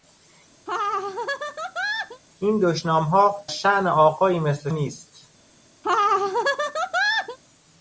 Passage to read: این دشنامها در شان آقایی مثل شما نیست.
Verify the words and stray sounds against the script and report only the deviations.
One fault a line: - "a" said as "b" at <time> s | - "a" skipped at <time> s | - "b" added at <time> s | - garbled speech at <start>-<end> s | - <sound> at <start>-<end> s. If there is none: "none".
- laugh at 0.7-2.2 s
- "در" skipped at 3.3 s
- "شما" skipped at 4.7 s
- laugh at 5.8-7.4 s